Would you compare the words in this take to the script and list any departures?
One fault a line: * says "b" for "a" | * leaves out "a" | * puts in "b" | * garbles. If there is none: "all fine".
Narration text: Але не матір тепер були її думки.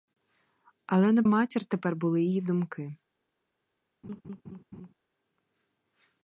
all fine